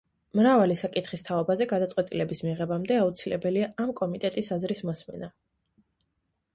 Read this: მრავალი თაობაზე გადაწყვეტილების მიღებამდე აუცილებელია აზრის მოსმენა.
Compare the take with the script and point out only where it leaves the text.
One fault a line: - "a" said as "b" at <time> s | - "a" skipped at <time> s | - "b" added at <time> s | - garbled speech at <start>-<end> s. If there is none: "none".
- "საკითხის" added at 0.8 s
- "ამ კომიტეტის" added at 3.8 s